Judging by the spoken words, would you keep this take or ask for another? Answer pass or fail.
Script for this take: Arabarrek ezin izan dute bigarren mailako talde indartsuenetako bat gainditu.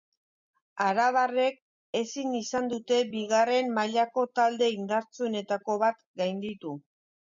pass